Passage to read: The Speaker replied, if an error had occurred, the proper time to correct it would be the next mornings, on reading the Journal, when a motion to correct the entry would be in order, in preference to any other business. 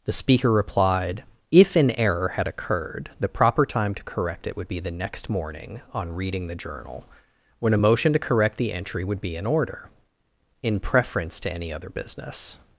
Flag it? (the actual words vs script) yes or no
yes